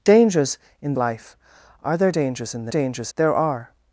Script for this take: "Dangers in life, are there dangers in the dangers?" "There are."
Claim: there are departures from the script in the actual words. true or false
false